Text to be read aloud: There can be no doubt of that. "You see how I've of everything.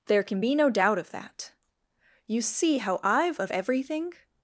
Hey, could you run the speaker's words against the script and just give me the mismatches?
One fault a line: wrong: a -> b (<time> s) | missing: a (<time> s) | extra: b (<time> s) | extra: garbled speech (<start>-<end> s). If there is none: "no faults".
no faults